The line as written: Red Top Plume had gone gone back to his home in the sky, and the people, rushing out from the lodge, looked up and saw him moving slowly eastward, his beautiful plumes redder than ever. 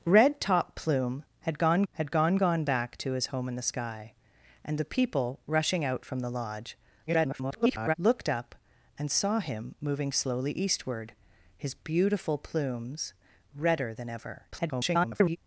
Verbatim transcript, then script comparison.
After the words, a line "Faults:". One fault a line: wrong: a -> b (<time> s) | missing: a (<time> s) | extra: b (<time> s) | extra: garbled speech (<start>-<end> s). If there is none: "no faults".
Red Top Plume had gone had gone gone back to his home in the sky, and the people, rushing out from the lodge, [garbled] looked up and saw him moving slowly eastward, his beautiful plumes redder than ever. [garbled]
Faults:
extra: had gone (1.9 s)
extra: garbled speech (7.1-8.0 s)
extra: garbled speech (14.5-15.4 s)